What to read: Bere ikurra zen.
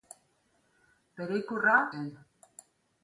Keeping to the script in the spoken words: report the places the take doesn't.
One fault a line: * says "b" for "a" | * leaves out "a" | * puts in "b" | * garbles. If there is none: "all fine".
all fine